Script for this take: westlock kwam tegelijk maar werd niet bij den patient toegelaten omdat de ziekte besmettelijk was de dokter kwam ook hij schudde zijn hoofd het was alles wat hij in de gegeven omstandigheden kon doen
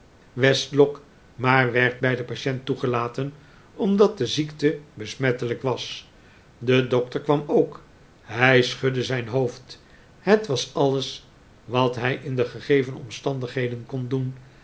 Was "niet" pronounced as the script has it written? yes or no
no